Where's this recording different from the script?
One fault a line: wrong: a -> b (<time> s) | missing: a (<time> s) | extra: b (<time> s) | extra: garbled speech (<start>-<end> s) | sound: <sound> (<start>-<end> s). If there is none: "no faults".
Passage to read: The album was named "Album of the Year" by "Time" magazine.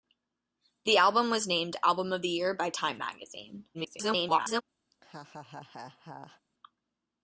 extra: garbled speech (3.7-4.6 s)
sound: laugh (4.9-6.4 s)